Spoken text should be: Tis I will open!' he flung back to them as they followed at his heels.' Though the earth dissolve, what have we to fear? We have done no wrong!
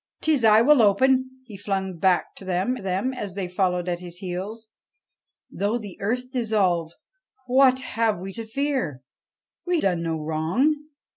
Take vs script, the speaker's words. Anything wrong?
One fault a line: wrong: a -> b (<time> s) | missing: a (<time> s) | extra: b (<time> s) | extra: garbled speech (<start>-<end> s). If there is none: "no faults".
extra: them (2.8 s)
missing: have (9.8 s)